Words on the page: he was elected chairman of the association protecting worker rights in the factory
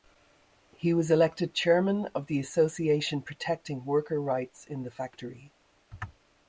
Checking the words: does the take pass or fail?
pass